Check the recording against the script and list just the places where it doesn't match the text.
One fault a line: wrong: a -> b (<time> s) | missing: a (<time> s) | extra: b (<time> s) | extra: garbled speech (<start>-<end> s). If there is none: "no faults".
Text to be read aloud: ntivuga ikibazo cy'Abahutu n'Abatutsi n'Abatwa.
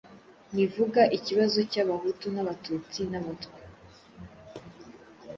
no faults